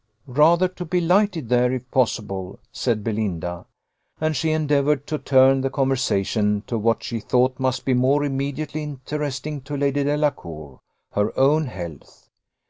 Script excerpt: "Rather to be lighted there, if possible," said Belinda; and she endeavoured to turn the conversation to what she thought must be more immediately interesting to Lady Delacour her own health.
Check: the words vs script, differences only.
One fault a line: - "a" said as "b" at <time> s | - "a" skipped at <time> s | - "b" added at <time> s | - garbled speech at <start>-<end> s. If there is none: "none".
none